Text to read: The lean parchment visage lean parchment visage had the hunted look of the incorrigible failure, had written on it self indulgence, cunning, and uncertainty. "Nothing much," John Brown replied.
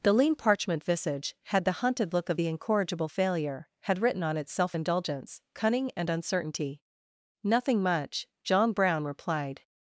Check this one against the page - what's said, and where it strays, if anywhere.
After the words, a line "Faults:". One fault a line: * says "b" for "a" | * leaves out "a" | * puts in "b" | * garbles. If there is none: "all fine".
The lean parchment visage had the hunted look of the incorrigible failure, had written on it self indulgence, cunning, and uncertainty. "Nothing much," John Brown replied.
Faults:
* leaves out "lean parchment visage"